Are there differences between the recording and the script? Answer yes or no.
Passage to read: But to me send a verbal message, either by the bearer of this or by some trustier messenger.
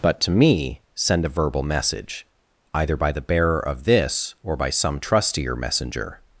no